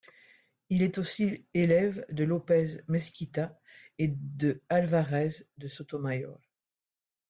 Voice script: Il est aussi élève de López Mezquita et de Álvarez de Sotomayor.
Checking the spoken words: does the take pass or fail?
pass